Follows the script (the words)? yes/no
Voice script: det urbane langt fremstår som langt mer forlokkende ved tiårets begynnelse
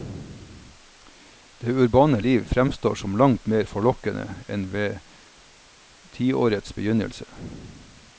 no